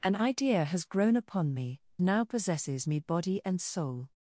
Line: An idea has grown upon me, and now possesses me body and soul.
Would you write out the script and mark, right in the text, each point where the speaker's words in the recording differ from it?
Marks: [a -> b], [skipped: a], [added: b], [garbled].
An idea has grown upon me, [skipped: and] now possesses me body and soul.